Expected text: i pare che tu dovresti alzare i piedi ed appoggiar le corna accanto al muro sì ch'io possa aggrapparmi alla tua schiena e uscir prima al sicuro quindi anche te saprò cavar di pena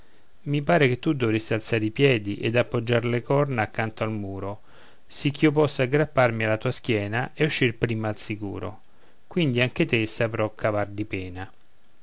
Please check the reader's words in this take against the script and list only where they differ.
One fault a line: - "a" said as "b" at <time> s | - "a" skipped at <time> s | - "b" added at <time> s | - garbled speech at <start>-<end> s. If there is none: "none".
none